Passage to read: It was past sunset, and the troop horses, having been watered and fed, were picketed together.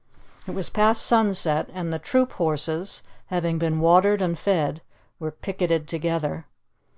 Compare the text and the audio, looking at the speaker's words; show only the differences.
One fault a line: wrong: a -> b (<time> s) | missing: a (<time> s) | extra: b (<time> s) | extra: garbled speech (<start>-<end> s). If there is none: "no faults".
no faults